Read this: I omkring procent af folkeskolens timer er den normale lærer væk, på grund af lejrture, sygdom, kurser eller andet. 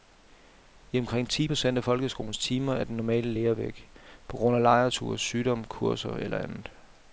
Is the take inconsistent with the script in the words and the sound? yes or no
yes